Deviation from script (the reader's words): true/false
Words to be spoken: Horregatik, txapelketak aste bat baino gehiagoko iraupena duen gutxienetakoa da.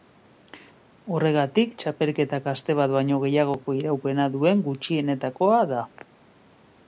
false